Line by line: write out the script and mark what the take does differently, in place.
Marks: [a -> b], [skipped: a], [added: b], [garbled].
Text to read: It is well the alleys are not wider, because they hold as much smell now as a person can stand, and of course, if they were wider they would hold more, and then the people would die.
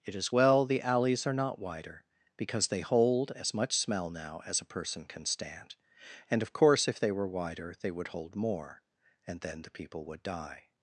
It is well the alleys are not wider, because they hold as much smell now as a person can stand, and of course, if they were wider they would hold more, and then the people would die.